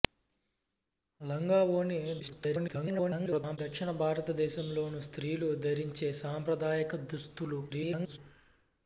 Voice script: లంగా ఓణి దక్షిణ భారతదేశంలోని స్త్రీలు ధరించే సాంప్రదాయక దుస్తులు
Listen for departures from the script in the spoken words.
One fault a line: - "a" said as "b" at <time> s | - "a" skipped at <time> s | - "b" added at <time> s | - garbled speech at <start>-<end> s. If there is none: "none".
- garbled speech at 2.2-3.6 s
- garbled speech at 7.7-8.2 s